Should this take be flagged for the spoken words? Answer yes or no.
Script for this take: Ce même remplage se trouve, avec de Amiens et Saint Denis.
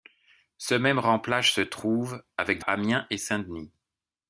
no